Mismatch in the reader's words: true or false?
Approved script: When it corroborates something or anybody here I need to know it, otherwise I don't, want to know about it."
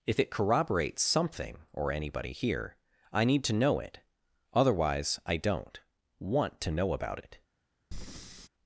true